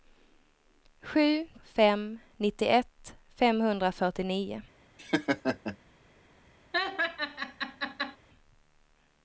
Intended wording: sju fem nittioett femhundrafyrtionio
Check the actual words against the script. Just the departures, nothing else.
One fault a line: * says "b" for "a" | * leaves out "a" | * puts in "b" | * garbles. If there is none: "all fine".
all fine